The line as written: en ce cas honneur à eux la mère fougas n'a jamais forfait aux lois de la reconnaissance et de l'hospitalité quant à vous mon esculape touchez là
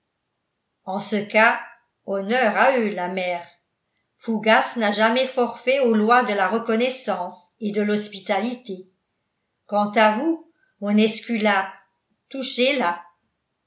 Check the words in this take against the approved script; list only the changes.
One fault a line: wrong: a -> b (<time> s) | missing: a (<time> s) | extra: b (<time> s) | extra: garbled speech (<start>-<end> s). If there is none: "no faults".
no faults